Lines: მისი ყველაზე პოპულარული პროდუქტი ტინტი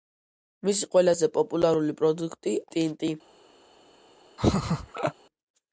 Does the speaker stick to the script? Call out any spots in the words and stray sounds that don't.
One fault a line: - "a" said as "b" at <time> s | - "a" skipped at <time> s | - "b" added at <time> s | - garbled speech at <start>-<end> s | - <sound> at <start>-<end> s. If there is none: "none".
- laugh at 4.4-5.1 s